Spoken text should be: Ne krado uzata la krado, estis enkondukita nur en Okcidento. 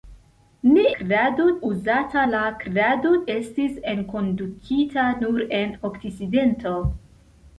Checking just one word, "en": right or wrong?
right